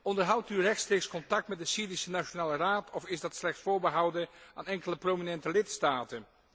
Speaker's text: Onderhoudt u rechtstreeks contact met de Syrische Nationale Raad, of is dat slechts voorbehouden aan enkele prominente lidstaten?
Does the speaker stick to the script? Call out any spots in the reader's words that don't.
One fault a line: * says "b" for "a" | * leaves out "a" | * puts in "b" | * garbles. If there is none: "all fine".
all fine